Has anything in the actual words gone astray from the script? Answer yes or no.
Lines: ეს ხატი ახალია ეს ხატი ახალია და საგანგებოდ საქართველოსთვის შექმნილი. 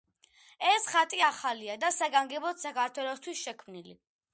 yes